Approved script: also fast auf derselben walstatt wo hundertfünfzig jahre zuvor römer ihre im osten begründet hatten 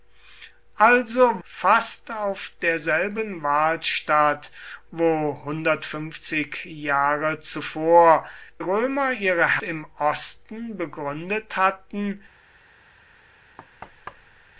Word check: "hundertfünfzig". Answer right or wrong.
right